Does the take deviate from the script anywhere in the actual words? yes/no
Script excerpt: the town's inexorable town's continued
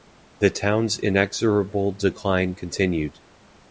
yes